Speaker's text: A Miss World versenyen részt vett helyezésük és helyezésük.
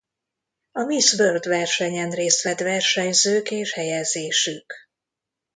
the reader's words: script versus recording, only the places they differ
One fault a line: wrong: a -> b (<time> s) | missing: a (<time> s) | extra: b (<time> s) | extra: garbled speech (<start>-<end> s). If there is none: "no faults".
wrong: helyezésük -> versenyzők (2.6 s)